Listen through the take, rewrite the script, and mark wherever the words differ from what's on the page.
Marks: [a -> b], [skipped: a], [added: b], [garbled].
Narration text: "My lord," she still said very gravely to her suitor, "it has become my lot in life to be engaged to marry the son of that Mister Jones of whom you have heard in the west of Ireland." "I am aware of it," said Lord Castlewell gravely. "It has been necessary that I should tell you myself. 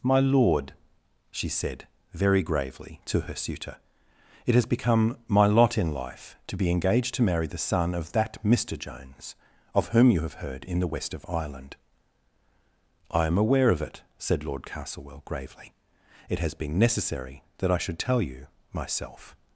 "My lord," she [skipped: still] said very gravely to her suitor, "it has become my lot in life to be engaged to marry the son of that Mister Jones of whom you have heard in the west of Ireland." "I am aware of it," said Lord Castlewell gravely. "It has been necessary that I should tell you myself.